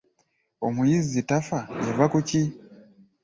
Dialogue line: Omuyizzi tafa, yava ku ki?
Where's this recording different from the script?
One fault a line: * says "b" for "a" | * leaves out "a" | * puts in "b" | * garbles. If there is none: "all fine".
all fine